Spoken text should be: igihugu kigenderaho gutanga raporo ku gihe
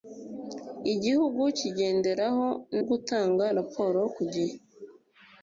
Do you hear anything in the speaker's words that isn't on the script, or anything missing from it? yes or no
no